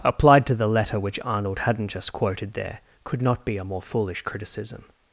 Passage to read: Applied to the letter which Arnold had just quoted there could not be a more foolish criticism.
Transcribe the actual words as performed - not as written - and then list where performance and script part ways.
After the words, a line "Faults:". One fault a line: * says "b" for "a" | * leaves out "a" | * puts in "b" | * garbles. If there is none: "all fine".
Applied to the letter which Arnold hadn't just quoted there could not be a more foolish criticism.
Faults:
* says "hadn't" for "had"